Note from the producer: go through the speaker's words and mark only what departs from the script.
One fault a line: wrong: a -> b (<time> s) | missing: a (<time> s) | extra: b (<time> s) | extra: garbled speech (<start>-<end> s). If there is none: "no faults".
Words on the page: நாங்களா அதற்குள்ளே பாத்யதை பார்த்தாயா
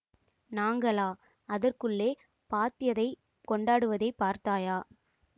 extra: கொண்டாடுவதைப் (3.5 s)